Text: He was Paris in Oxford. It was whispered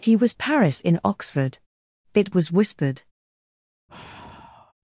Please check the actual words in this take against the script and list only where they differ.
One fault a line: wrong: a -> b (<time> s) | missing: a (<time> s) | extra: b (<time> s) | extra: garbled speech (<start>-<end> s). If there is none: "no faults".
no faults